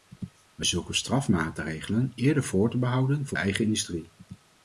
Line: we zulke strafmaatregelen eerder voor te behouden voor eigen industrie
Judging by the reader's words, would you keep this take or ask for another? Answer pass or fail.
pass